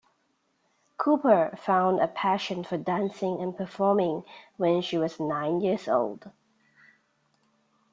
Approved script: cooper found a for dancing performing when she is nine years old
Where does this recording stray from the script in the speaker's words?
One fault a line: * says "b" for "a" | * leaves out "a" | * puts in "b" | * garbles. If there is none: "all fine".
* puts in "passion"
* puts in "and"
* says "was" for "is"